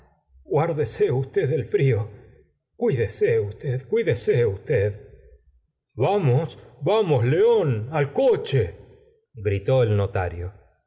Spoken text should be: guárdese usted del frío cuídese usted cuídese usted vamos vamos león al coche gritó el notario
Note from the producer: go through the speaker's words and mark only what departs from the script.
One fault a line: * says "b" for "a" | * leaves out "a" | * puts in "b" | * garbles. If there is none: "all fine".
all fine